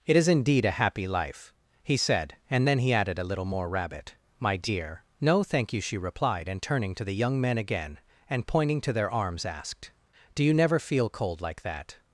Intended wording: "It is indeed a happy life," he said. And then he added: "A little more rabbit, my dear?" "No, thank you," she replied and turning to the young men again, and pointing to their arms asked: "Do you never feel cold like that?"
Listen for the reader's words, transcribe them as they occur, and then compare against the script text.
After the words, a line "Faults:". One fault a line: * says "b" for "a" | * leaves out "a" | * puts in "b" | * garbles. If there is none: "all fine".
"It is indeed a happy life," he said. And then he added: "A little more rabbit, my dear?" "No, thank you," she replied and turning to the young men again, and pointing to their arms asked: "Do you never feel cold like that?"
Faults:
all fine